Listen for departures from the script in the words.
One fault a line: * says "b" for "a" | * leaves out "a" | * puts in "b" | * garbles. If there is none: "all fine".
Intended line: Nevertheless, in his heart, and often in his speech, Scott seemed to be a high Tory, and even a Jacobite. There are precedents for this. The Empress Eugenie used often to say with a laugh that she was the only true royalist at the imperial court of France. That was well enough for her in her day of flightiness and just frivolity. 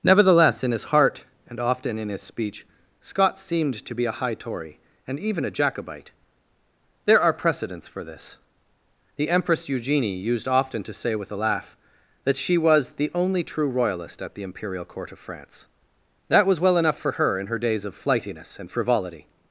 * says "days" for "day"
* leaves out "just"